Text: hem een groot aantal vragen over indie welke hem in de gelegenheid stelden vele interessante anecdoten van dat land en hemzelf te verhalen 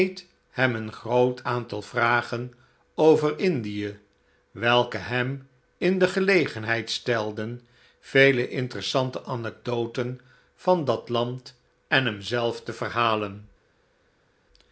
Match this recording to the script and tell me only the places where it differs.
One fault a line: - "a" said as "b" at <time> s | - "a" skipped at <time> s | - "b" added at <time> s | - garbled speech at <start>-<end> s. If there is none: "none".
none